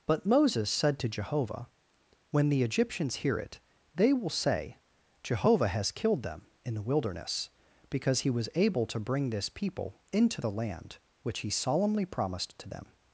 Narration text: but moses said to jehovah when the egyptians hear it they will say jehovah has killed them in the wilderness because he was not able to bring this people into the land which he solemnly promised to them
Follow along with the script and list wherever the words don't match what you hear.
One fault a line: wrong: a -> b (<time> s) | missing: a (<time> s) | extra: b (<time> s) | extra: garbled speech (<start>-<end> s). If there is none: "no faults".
missing: not (8.5 s)